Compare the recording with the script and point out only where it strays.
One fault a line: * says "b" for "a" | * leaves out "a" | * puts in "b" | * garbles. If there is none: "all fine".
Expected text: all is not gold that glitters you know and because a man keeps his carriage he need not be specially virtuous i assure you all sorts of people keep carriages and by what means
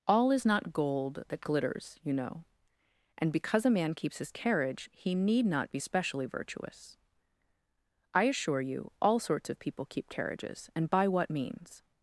all fine